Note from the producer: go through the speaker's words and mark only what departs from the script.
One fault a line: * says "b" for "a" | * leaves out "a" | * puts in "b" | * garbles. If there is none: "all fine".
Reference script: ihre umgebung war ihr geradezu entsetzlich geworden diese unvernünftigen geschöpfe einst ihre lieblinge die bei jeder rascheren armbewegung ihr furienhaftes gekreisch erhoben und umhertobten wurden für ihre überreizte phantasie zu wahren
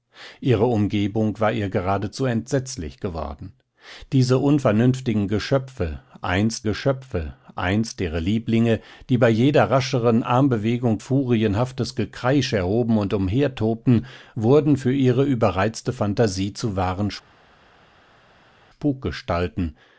* puts in "geschöpfe einst"
* leaves out "ihr"